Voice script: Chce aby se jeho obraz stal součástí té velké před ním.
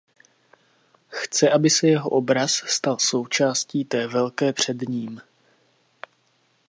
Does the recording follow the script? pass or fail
pass